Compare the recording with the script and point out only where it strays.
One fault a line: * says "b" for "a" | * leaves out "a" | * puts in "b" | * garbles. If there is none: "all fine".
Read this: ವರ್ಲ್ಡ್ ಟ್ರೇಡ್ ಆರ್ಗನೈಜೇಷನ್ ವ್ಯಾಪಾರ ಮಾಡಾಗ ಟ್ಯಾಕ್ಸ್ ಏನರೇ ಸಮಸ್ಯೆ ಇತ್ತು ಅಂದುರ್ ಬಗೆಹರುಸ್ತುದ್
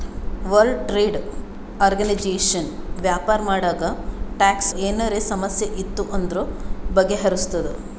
all fine